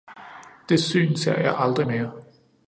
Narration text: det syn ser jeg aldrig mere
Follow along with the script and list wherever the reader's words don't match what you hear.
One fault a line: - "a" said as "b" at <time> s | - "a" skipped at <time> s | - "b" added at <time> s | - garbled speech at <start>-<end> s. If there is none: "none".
none